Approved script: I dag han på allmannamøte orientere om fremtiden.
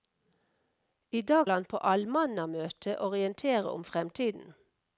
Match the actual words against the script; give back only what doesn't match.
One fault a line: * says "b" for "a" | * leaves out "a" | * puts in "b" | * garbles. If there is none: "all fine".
all fine